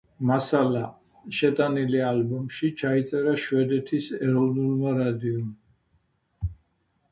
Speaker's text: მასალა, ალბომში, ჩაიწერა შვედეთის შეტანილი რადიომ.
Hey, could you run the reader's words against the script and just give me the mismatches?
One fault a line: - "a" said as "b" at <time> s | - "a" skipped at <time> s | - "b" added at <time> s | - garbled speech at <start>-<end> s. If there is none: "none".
- "შეტანილი" added at 1.4 s
- "შეტანილი" said as "ეროვნულმა" at 4.2 s